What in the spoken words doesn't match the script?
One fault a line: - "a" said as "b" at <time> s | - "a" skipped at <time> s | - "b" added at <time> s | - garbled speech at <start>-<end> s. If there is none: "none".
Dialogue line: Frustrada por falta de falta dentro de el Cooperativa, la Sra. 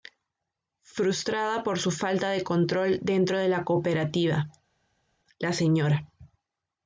- "su" added at 1.8 s
- "falta" said as "control" at 2.4 s
- "el" said as "la" at 3.5 s